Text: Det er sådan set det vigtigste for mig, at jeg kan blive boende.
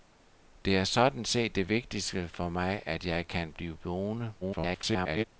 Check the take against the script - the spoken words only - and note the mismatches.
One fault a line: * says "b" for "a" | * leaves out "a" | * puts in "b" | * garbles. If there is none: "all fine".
* garbles